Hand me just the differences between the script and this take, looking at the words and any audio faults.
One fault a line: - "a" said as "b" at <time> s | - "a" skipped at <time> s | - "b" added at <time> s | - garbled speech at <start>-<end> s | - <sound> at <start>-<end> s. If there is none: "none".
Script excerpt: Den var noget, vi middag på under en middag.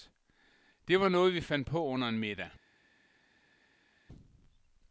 - "Den" said as "Det" at 0.9 s
- "middag" said as "fandt" at 1.4 s